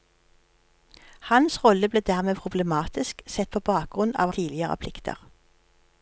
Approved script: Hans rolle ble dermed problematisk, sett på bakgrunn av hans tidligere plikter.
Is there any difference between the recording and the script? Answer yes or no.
yes